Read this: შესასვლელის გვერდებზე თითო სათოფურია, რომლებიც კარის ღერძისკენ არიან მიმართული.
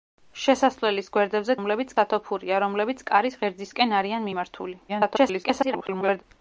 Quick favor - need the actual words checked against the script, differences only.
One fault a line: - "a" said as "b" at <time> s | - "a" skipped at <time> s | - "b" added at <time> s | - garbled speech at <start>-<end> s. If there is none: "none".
- "თითო" said as "რომლებიც" at 1.6 s
- garbled speech at 4.9-6.2 s